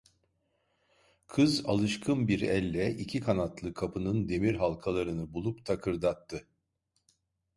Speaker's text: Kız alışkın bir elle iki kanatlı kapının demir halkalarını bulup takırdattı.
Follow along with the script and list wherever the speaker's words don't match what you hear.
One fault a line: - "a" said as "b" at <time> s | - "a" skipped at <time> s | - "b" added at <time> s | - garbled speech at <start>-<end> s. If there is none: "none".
none